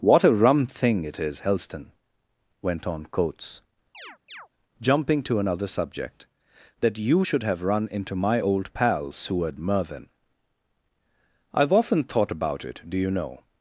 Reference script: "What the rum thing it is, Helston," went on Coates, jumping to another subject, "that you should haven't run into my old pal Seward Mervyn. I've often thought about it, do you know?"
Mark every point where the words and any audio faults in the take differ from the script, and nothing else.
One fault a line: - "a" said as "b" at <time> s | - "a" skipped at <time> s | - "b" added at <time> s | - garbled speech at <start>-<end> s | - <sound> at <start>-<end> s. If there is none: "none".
- "the" said as "a" at 0.2 s
- chirp at 3.9-4.5 s
- "haven't" said as "have" at 7.4 s